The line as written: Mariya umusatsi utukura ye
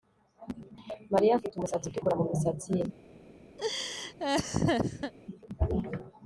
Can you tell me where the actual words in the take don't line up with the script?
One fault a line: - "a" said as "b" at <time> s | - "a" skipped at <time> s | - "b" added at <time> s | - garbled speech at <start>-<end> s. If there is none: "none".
- "afite" added at 1.4 s
- "mumisatsi" added at 2.2 s